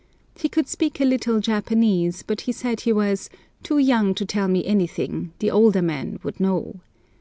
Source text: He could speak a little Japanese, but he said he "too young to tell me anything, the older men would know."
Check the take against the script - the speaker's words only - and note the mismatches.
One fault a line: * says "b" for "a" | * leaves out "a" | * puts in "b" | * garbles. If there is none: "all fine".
* puts in "was"